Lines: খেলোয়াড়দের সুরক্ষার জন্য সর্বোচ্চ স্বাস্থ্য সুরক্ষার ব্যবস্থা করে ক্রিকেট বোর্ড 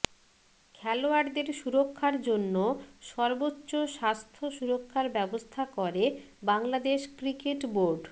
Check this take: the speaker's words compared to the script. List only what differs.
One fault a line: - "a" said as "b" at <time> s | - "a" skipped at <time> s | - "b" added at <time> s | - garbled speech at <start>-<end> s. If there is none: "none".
- "বাংলাদেশ" added at 6.4 s